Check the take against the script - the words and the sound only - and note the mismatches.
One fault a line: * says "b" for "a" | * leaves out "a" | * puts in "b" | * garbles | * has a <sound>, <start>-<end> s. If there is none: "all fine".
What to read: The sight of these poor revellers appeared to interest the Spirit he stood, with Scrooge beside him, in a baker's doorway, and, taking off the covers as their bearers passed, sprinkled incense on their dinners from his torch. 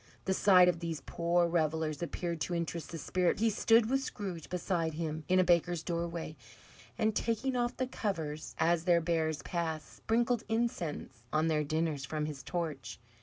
all fine